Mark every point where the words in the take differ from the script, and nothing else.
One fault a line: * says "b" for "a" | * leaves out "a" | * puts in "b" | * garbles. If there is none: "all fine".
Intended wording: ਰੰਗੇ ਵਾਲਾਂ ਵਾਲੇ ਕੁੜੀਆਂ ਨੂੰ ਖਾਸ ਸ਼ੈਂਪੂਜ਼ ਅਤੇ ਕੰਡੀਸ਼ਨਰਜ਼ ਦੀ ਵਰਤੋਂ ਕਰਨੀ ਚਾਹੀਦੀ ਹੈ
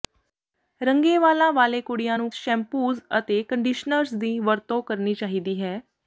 * leaves out "ਖਾਸ"